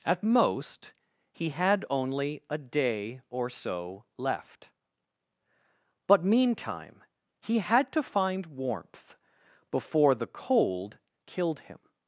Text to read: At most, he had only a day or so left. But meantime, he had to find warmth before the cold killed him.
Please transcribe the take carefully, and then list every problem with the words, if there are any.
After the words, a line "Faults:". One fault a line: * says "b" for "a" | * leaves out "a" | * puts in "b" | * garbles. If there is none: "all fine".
At most, he had only a day or so left. But meantime, he had to find warmth before the cold killed him.
Faults:
all fine